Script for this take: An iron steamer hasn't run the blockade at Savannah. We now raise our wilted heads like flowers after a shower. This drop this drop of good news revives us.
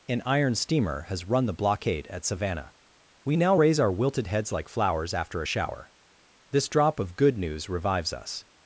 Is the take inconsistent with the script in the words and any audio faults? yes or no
yes